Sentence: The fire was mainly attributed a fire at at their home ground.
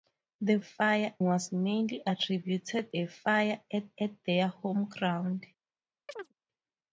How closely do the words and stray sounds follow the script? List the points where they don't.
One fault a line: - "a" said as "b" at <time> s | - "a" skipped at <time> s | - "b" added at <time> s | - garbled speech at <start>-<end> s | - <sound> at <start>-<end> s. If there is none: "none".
- chirp at 6.1-6.3 s